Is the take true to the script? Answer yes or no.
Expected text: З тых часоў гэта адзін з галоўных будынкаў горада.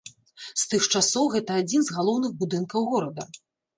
yes